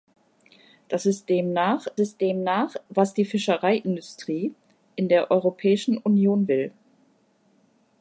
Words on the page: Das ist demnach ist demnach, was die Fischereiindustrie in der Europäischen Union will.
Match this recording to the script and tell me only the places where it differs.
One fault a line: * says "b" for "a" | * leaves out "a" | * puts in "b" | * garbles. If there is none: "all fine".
all fine